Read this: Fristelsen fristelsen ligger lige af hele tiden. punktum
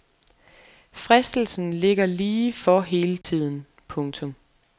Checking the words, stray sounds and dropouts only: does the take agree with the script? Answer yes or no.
no